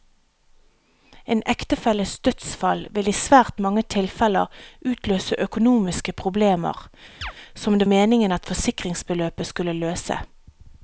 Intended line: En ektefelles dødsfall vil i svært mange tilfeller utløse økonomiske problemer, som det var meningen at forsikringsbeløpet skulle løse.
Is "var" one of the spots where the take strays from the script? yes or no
yes